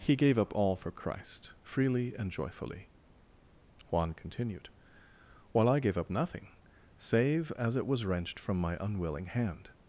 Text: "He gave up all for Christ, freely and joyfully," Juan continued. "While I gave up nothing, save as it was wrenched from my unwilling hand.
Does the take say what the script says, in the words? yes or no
yes